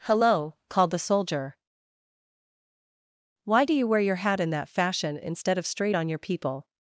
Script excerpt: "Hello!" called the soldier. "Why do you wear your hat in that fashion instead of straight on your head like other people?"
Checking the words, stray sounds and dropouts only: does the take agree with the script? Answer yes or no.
no